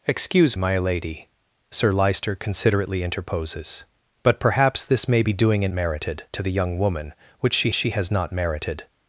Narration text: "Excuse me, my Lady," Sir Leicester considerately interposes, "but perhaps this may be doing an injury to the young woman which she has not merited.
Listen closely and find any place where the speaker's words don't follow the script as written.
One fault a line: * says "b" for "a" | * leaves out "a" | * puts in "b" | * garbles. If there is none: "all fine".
* leaves out "me"
* says "merited" for "injury"
* puts in "she"